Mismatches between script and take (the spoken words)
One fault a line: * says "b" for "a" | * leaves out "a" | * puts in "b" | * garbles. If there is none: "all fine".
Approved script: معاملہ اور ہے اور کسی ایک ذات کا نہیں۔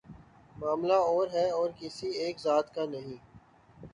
all fine